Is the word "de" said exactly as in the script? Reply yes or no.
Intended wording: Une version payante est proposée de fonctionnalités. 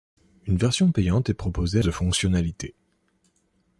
yes